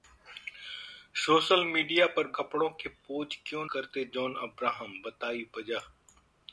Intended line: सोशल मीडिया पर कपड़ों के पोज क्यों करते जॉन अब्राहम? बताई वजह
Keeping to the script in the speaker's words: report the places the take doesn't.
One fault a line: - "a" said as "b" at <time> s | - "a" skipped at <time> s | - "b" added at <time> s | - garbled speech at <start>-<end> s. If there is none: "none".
none